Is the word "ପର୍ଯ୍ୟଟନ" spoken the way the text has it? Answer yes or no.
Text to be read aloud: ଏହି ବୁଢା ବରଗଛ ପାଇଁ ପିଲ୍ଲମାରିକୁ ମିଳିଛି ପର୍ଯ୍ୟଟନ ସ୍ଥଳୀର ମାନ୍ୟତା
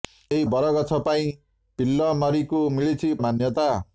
no